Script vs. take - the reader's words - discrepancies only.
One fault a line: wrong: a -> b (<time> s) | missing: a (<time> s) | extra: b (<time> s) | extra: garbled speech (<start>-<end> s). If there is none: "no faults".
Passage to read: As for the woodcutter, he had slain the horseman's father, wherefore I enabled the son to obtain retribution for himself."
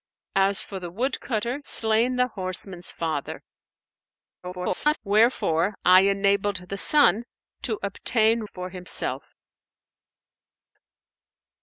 missing: he had (1.6 s)
extra: garbled speech (4.4-5.0 s)
missing: retribution (8.4 s)